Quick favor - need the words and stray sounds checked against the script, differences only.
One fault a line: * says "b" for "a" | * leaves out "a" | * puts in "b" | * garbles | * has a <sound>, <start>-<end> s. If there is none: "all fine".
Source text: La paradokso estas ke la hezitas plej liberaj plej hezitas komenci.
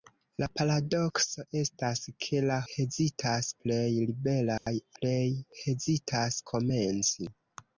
* has a dropout, 4.6-4.7 s